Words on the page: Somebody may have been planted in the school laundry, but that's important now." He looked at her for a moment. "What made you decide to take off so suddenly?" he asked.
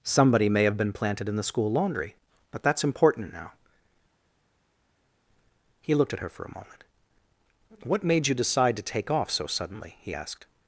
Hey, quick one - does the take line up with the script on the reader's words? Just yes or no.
yes